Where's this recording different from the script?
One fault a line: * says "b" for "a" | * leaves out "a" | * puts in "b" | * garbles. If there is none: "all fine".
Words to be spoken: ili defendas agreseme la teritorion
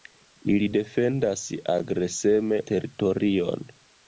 * leaves out "la"